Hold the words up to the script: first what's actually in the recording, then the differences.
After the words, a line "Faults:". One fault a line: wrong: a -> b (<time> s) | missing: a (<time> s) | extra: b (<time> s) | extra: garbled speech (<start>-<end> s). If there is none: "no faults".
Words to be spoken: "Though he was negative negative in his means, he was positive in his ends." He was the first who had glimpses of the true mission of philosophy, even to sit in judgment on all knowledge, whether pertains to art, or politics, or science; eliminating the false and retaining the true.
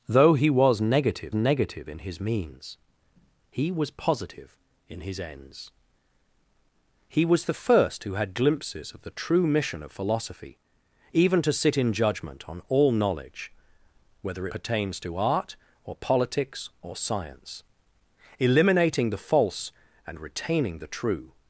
"Though he was negative negative in his means, he was positive in his ends." He was the first who had glimpses of the true mission of philosophy, even to sit in judgment on all knowledge, whether pertains to art, or politics, or science; eliminating the false and retaining the true.
Faults:
no faults